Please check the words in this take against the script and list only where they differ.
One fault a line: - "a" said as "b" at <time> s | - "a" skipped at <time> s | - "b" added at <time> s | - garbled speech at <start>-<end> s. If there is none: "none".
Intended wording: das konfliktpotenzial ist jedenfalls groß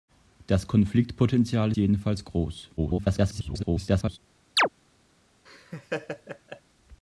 - "ist" skipped at 1.7 s
- garbled speech at 2.8-4.2 s